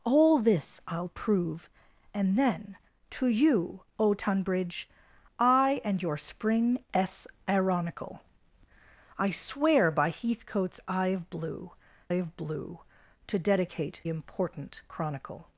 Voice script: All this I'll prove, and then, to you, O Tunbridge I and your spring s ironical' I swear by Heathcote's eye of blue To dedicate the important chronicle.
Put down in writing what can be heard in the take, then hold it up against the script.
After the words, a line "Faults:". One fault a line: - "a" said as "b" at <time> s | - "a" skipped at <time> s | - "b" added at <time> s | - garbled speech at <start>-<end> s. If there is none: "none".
All this I'll prove, and then, to you, O Tunbridge I and your spring s ironical' I swear by Heathcote's eye of blue of blue To dedicate important chronicle.
Faults:
- "of blue" added at 12.1 s
- "the" skipped at 14.0 s